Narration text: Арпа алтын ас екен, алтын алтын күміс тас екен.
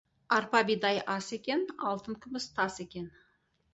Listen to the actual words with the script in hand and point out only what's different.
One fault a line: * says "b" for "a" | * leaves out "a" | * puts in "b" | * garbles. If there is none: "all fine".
* says "бидай" for "алтын"
* leaves out "алтын"